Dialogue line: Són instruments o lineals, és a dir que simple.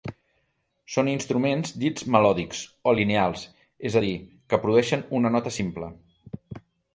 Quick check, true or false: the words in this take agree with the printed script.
false